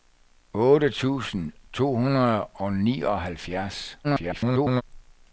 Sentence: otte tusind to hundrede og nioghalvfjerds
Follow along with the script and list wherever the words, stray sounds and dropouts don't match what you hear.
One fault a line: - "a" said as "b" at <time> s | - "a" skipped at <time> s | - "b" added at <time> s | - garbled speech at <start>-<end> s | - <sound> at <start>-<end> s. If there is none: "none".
- garbled speech at 4.0-4.8 s